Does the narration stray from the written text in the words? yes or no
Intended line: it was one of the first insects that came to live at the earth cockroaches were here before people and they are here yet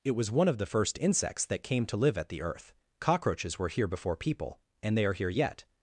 no